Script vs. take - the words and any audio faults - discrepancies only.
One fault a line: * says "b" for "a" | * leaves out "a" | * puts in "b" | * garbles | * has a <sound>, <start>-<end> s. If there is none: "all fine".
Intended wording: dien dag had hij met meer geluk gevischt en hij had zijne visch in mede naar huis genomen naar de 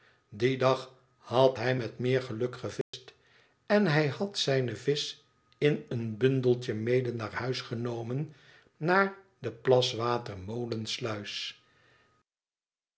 * has a dropout, 2.8-2.9 s
* puts in "een bundeltje"